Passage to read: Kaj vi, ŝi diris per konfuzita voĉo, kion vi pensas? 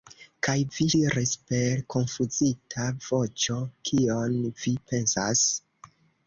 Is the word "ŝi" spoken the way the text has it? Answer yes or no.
no